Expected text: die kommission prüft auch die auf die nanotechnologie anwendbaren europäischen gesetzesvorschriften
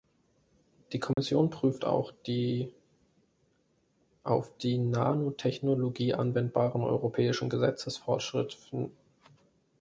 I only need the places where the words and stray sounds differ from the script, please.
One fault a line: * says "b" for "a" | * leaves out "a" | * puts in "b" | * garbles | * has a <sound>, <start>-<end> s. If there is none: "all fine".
* has a dropout, 1.1-1.2 s